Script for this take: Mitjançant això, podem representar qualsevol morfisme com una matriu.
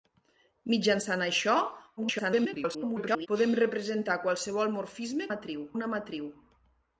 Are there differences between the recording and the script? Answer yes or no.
yes